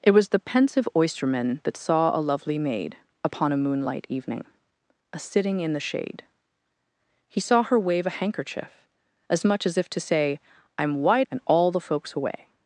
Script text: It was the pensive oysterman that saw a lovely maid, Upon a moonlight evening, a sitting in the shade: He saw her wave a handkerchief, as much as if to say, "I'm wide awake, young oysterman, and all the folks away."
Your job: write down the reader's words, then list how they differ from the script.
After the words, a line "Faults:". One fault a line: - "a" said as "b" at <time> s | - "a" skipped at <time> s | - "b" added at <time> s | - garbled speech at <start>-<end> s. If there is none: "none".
It was the pensive oysterman that saw a lovely maid, Upon a moonlight evening, a sitting in the shade: He saw her wave a handkerchief, as much as if to say, "I'm wide and all the folks away."
Faults:
- "awake young oysterman" skipped at 11.3 s